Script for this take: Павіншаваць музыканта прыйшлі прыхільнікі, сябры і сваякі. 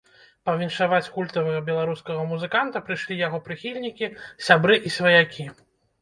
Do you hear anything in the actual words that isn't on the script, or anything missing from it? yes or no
yes